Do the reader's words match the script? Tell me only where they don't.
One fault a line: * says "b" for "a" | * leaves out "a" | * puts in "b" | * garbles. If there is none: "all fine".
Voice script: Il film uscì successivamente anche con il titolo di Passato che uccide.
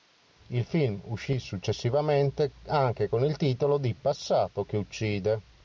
all fine